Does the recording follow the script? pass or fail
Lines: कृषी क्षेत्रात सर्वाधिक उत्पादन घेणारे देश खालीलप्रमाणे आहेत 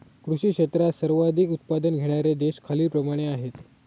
pass